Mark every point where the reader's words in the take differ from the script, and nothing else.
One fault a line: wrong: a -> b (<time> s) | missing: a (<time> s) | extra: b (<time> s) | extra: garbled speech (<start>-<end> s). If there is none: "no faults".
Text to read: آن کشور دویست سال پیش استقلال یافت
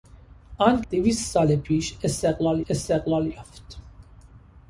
missing: کشور (0.8 s)
extra: استقلال (2.7 s)